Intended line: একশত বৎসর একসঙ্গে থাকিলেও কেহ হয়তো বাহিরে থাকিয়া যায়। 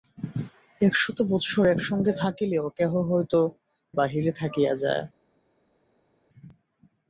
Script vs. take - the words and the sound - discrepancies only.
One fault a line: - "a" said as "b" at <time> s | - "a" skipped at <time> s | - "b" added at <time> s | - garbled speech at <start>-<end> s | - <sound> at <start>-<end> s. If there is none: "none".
none